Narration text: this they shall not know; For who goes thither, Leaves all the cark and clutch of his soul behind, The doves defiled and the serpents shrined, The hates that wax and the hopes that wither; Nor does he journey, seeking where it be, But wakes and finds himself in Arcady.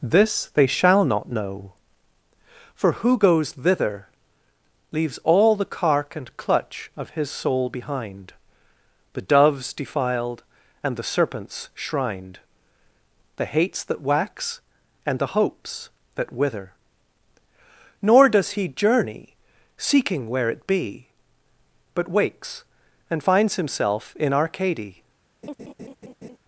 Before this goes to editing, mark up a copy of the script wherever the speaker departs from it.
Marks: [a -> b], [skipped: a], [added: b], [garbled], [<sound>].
this they shall not know; For who goes thither, Leaves all the cark and clutch of his soul behind, The doves defiled and the serpents shrined, The hates that wax and the hopes that wither; Nor does he journey, seeking where it be, But wakes and finds himself in Arcady. [laugh]